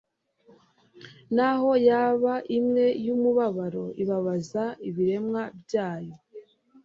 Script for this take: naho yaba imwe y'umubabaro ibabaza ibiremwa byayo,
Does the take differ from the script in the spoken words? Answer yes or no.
no